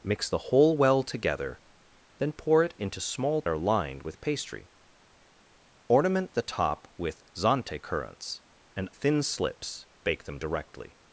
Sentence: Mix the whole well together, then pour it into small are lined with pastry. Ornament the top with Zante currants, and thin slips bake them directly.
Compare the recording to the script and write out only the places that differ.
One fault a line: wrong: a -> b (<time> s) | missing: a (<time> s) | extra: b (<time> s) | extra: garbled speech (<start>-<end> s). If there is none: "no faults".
no faults